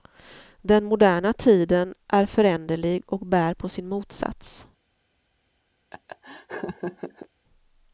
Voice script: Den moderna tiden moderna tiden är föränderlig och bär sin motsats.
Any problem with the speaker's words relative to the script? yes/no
yes